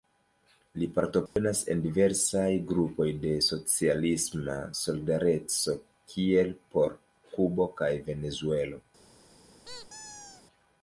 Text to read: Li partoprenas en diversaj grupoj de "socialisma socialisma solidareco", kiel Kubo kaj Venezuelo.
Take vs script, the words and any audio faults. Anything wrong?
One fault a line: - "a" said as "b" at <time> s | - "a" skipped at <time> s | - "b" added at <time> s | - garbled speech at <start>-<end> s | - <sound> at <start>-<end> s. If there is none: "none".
- dropout at 1.3-1.4 s
- "socialisma" skipped at 4.6 s
- "por" added at 6.8 s
- squeak at 9.6-10.4 s